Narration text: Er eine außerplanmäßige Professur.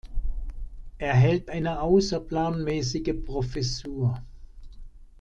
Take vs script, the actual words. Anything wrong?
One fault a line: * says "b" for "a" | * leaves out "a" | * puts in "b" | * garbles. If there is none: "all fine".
* puts in "hält"